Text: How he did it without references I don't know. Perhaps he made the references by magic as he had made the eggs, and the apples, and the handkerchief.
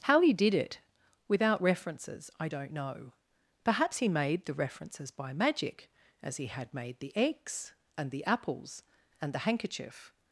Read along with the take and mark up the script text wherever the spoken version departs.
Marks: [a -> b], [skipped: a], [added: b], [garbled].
How he did it without references I don't know. Perhaps he made the references by magic as he had made the eggs, and the apples, and the handkerchief.